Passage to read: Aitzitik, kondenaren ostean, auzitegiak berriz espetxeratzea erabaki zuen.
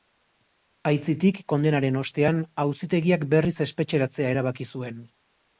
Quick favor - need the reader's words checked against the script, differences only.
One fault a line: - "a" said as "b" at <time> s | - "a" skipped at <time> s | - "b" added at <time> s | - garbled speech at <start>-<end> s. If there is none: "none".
none